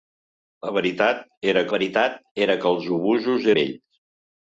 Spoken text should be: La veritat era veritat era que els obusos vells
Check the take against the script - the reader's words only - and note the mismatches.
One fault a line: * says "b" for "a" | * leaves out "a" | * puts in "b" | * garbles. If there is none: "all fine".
all fine